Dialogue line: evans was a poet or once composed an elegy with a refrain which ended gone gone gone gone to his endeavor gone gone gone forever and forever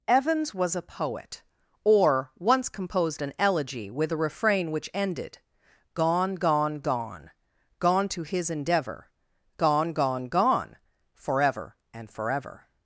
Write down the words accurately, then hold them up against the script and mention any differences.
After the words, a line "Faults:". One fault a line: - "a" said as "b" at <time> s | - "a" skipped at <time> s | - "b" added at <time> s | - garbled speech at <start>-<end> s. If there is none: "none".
evans was a poet or once composed an elegy with a refrain which ended gone gone gone gone to his endeavor gone gone gone forever and forever
Faults:
none